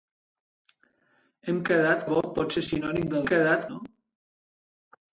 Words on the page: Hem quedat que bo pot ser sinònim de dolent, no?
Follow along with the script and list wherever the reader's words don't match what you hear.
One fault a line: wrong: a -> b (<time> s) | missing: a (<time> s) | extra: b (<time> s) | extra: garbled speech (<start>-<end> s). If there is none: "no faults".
missing: que (2.1 s)
wrong: dolent -> quedat (3.3 s)